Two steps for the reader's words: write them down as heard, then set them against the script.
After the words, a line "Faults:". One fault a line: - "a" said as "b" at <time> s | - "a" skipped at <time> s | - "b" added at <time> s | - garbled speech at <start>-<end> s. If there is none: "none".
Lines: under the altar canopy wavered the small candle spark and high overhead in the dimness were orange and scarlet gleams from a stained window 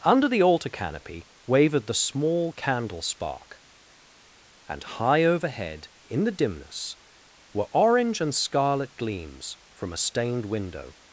under the altar canopy wavered the small candle spark and high overhead in the dimness were orange and scarlet gleams from a stained window
Faults:
none